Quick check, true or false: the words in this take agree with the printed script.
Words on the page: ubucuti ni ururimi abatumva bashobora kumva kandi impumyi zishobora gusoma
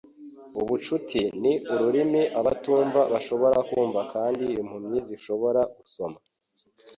true